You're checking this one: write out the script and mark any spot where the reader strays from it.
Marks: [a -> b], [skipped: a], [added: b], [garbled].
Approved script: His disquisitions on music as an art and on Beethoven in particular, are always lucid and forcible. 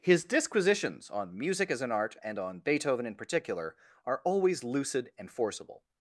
His disquisitions on music as an art and on Beethoven in particular, are always lucid and forcible.